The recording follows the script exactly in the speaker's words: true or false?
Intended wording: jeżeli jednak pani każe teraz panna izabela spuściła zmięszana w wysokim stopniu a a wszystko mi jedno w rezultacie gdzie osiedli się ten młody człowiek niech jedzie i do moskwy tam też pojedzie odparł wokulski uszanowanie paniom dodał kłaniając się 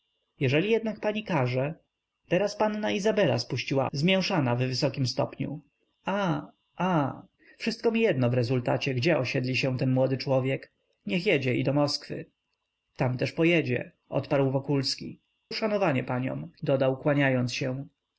true